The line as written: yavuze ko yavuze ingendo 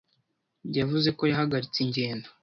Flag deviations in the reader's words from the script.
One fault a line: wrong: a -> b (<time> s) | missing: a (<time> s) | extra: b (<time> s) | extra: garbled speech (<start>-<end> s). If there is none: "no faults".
wrong: yavuze -> yahagaritse (1.3 s)